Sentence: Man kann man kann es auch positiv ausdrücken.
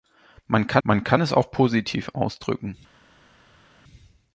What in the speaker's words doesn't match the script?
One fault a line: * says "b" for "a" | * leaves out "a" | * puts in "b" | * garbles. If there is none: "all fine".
all fine